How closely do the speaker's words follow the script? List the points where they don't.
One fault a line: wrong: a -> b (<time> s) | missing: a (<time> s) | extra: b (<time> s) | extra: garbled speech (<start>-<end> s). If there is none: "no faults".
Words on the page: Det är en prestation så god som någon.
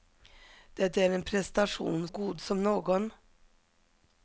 missing: så (2.1 s)